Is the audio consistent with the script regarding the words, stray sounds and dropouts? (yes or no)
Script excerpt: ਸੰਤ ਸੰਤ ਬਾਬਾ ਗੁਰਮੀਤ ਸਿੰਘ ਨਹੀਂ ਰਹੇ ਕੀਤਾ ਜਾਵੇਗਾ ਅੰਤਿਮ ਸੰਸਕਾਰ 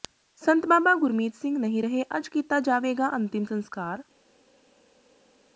no